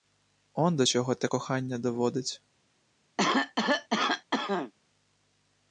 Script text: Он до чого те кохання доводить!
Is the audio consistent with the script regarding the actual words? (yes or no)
yes